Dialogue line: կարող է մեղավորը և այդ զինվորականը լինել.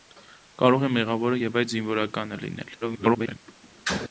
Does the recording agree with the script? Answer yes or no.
no